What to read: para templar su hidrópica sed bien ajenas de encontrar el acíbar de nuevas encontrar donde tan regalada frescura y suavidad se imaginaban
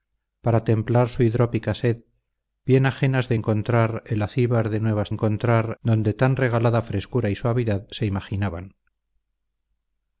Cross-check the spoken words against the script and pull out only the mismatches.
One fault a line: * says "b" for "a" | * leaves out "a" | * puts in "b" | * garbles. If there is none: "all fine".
all fine